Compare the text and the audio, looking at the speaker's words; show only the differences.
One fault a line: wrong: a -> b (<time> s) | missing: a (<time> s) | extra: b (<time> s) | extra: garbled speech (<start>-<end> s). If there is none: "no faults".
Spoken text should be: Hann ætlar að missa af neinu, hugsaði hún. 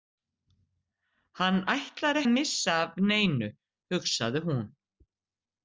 no faults